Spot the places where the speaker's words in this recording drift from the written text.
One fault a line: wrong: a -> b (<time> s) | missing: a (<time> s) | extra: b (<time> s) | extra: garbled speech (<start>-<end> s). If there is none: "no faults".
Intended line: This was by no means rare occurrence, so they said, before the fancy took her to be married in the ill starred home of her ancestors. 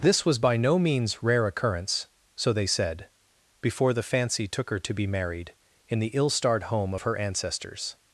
no faults